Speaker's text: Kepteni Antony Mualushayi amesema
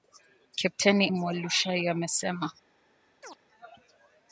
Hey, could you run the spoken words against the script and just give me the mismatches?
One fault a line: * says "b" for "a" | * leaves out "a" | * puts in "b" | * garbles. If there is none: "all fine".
* leaves out "Antony"